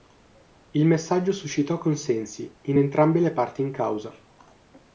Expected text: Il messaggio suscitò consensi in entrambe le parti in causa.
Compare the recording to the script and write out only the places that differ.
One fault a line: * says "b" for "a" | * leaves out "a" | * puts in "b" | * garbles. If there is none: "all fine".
all fine